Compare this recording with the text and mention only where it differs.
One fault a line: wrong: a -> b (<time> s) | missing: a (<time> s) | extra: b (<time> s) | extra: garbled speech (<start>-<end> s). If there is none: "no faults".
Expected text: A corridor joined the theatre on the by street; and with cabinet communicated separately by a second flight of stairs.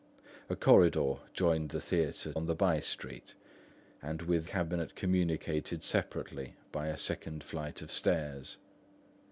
no faults